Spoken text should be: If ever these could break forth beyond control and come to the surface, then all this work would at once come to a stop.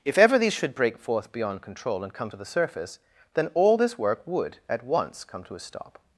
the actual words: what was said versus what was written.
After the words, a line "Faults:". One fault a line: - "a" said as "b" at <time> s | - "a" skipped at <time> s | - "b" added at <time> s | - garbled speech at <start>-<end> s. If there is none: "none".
If ever these should break forth beyond control and come to the surface, then all this work would at once come to a stop.
Faults:
- "could" said as "should" at 0.5 s